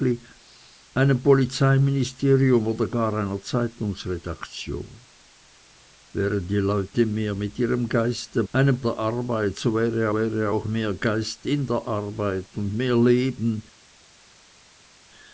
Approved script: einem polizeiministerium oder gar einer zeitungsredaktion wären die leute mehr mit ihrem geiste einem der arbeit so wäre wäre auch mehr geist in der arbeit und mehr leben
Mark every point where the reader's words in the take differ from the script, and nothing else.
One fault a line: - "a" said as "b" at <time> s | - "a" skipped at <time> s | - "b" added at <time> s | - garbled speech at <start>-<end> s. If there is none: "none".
none